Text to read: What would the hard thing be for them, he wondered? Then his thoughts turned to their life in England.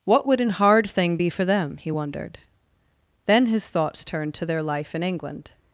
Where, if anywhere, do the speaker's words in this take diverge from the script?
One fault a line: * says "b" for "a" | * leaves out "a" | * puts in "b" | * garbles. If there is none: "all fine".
* says "an" for "the"